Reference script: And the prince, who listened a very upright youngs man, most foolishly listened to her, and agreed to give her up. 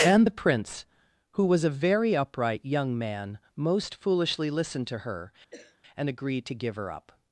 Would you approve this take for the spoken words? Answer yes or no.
no